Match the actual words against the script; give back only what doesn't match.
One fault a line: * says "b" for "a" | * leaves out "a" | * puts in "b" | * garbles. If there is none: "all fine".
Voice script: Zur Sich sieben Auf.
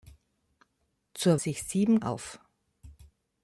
all fine